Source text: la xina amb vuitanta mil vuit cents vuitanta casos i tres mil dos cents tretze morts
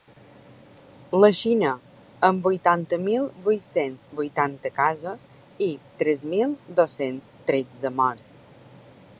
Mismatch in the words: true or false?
false